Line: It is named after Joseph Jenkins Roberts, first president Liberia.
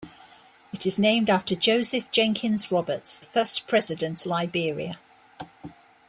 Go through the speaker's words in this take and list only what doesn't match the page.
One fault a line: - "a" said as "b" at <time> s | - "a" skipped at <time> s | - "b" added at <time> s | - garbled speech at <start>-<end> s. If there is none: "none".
none